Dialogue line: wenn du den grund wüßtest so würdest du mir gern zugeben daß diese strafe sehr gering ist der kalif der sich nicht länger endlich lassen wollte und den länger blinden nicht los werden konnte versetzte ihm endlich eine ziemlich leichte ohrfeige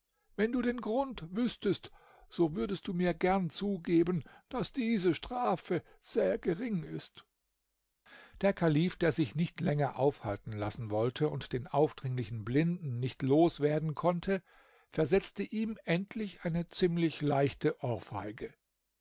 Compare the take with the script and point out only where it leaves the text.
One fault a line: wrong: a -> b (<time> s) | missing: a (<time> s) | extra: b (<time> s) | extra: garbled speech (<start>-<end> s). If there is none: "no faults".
wrong: endlich -> aufhalten (10.0 s)
wrong: länger -> aufdringlichen (11.7 s)